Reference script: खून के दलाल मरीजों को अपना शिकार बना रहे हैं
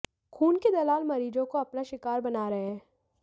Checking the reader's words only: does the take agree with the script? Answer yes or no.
yes